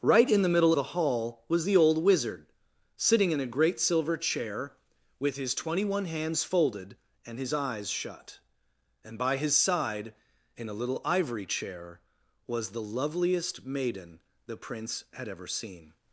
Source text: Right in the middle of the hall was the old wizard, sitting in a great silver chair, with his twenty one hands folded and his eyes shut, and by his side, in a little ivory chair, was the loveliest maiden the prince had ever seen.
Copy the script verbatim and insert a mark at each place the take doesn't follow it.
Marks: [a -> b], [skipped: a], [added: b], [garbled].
Right in the middle [skipped: of] the hall was the old wizard, sitting in a great silver chair, with his twenty one hands folded and his eyes shut, and by his side, in a little ivory chair, was the loveliest maiden the prince had ever seen.